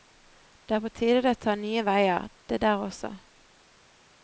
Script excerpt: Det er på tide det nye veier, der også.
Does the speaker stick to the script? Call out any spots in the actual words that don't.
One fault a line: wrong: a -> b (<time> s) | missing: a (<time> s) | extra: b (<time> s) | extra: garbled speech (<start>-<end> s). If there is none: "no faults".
extra: tar (1.4 s)
extra: det (2.5 s)